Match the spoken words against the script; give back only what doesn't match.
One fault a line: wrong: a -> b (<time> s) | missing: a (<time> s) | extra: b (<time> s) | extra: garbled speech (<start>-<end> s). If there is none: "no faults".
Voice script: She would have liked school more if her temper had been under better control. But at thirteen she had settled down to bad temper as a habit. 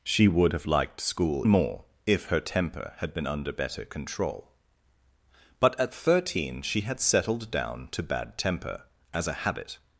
no faults